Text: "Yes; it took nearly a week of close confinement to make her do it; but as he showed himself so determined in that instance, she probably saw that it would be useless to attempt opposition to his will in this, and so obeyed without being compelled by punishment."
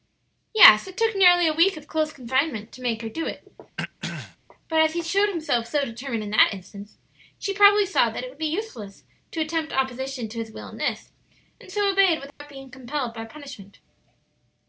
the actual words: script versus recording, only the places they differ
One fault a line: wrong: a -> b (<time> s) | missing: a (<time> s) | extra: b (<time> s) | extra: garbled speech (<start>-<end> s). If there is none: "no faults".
no faults